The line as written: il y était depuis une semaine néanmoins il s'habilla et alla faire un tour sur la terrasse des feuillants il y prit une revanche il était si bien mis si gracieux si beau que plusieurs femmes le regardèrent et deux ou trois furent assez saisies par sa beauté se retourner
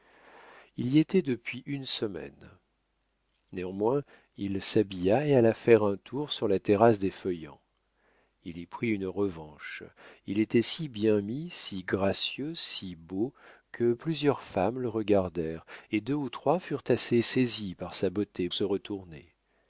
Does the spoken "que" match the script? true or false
true